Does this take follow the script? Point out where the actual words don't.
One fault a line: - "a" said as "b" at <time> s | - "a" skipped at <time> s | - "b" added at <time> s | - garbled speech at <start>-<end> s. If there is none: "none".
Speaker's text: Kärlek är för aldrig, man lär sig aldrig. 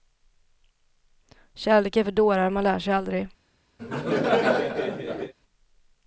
- "aldrig" said as "dårar" at 2.1 s